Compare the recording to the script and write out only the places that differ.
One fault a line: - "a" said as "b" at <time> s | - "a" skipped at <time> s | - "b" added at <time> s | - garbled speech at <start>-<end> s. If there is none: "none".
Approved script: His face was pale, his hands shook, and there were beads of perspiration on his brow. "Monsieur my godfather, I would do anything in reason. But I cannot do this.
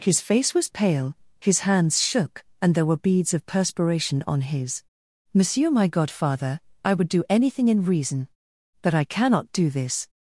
- "brow" skipped at 4.8 s